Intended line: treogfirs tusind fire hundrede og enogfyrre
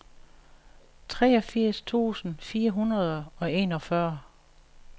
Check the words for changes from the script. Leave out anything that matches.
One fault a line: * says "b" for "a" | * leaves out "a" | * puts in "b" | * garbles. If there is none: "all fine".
all fine